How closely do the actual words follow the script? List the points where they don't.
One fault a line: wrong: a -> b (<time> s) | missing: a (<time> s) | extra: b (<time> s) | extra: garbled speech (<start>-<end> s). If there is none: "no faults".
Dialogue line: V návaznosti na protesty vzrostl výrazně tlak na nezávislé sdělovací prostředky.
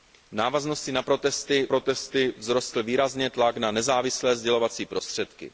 extra: protesty (1.7 s)